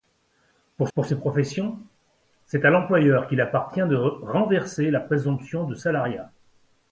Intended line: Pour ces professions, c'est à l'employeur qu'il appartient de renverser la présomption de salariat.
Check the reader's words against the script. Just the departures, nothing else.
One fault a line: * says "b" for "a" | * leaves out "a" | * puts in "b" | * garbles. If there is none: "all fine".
* puts in "pour"